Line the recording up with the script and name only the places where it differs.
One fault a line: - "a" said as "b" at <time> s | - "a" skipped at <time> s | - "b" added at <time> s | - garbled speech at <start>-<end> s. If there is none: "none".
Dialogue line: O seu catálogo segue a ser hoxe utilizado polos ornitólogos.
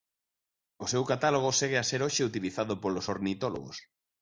none